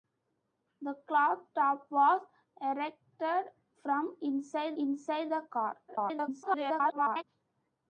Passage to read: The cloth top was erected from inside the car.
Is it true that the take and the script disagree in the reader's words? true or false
true